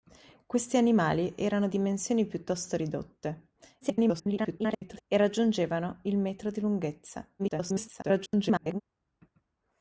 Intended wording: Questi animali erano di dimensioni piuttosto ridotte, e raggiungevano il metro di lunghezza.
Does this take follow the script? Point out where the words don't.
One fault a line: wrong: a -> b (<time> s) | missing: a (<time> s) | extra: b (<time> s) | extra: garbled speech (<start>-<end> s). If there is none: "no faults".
missing: di (1.7 s)
extra: garbled speech (3.8-5.0 s)
extra: garbled speech (7.4-8.8 s)